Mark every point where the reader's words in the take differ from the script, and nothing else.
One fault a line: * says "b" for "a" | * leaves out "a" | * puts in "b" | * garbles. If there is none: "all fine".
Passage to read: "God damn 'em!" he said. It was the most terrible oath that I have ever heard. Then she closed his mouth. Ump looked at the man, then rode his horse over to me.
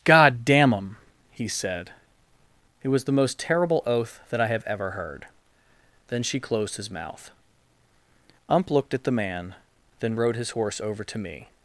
all fine